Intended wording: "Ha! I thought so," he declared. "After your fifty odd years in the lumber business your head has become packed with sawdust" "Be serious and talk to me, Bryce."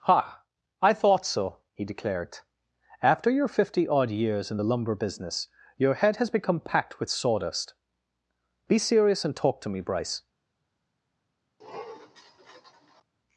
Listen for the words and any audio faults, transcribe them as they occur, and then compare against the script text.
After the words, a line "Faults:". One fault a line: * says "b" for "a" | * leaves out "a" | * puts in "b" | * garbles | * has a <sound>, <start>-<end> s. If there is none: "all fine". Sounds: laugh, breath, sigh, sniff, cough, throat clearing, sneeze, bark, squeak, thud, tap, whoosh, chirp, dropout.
"Ha! I thought so," he declared. "After your fifty odd years in the lumber business your head has become packed with sawdust" "Be serious and talk to me, Bryce."
Faults:
* has a sniff, 11.6-13.0 s